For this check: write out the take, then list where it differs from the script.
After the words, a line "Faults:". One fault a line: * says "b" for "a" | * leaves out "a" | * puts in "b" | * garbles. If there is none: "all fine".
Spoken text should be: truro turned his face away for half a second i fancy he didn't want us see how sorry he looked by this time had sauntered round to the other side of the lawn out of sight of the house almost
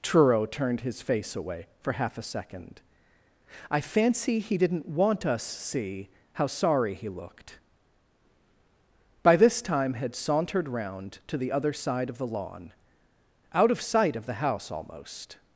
truro turned his face away for half a second i fancy he didn't want us see how sorry he looked by this time had sauntered round to the other side of the lawn out of sight of the house almost
Faults:
all fine